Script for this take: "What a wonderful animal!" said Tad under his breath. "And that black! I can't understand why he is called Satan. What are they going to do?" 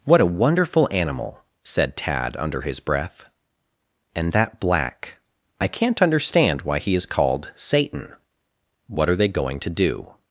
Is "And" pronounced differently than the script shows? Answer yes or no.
no